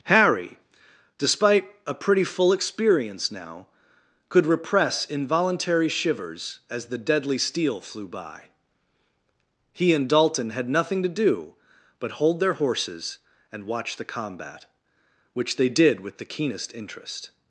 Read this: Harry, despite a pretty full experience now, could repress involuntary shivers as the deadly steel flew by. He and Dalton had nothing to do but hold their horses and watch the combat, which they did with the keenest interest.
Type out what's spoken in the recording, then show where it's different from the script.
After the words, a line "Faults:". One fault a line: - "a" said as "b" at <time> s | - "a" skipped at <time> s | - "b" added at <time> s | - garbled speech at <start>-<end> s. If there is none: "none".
Harry, despite a pretty full experience now, could repress involuntary shivers as the deadly steel flew by. He and Dalton had nothing to do but hold their horses and watch the combat, which they did with the keenest interest.
Faults:
none